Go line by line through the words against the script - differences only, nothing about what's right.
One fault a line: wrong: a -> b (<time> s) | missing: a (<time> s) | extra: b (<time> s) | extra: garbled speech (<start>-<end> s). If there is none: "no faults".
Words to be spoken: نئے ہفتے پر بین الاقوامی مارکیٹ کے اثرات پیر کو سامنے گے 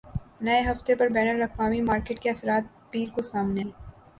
no faults